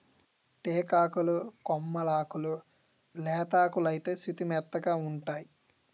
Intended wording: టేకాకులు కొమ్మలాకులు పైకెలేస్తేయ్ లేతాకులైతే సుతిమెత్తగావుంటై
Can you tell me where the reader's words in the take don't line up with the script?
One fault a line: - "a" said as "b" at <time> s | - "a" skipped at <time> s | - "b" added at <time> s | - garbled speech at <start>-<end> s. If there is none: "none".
- "పైకెలేస్తేయ్" skipped at 2.5 s